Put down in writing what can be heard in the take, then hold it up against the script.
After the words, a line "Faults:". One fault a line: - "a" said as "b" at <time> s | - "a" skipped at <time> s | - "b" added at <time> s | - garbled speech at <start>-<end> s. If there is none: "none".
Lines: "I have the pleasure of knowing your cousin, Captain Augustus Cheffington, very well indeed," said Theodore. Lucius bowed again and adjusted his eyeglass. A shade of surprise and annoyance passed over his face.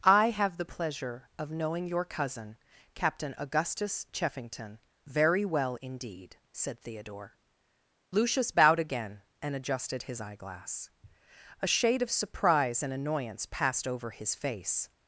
"I have the pleasure of knowing your cousin, Captain Augustus Cheffington, very well indeed," said Theodore. Lucius bowed again and adjusted his eyeglass. A shade of surprise and annoyance passed over his face.
Faults:
none